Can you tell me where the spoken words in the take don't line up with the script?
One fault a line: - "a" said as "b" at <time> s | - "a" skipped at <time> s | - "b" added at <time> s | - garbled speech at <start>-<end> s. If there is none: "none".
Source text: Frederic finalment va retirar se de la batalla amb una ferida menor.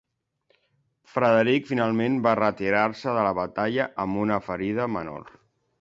none